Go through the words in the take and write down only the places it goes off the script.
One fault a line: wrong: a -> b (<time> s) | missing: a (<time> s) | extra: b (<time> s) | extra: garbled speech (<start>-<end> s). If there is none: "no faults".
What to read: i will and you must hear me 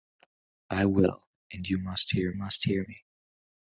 extra: must hear (2.3 s)